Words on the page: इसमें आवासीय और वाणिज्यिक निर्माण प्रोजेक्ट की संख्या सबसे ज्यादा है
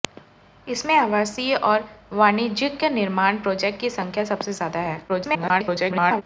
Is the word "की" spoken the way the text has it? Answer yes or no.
yes